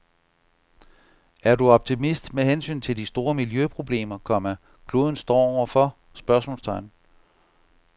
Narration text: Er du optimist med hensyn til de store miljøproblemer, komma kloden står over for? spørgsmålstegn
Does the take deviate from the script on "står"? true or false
false